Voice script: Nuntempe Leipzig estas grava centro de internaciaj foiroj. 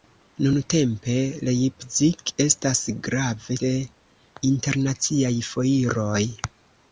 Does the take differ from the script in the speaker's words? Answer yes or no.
yes